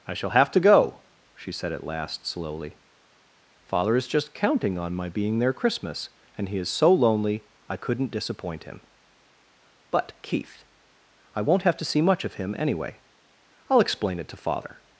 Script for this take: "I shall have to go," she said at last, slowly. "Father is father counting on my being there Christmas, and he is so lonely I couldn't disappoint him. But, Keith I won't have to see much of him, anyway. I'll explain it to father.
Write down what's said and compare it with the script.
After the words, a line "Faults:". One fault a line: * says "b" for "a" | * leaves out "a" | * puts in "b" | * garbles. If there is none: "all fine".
"I shall have to go," she said at last, slowly. "Father is just counting on my being there Christmas, and he is so lonely I couldn't disappoint him. But, Keith I won't have to see much of him, anyway. I'll explain it to father.
Faults:
* says "just" for "father"